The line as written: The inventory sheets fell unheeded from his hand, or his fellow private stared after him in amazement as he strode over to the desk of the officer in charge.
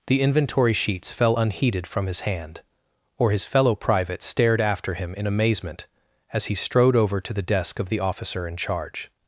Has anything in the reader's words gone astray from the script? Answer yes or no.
no